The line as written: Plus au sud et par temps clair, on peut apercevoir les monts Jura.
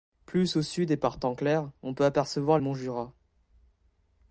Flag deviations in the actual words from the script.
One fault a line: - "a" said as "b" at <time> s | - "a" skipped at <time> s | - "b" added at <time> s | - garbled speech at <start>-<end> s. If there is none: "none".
- "les" skipped at 2.6 s